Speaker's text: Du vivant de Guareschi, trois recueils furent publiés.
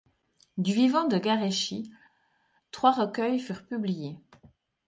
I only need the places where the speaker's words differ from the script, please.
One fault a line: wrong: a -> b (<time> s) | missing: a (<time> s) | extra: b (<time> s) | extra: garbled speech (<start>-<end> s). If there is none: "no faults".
no faults